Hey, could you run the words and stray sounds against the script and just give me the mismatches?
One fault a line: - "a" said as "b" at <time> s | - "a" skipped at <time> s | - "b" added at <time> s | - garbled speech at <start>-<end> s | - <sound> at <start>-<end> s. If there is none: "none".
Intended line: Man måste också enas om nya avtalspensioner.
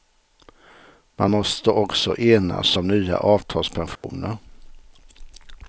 - dropout at 4.0-4.0 s